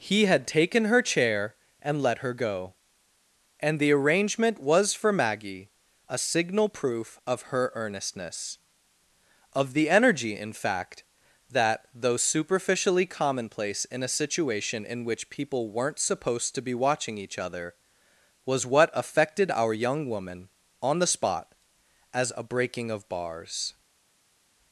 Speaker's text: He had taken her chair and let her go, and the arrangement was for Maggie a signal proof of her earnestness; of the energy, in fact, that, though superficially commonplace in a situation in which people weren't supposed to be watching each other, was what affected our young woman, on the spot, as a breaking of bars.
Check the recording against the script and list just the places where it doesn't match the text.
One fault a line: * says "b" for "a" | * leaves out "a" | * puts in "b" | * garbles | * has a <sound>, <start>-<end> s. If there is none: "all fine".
all fine